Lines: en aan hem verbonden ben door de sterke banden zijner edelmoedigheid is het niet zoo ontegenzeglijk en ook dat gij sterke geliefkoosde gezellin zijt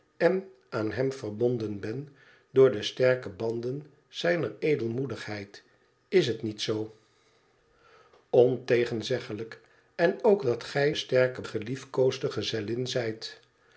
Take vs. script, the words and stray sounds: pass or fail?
pass